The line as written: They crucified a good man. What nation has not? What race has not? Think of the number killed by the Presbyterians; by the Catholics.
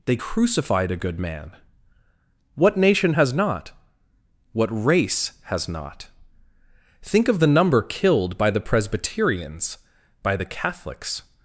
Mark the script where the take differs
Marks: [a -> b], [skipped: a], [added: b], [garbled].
They crucified a good man. What nation has not? What race has not? Think of the number killed by the Presbyterians; by the Catholics.